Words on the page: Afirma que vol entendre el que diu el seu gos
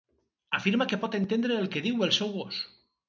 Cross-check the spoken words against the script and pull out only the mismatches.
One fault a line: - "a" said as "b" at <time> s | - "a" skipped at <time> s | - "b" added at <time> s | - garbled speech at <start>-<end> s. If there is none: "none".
- "vol" said as "pot" at 1.0 s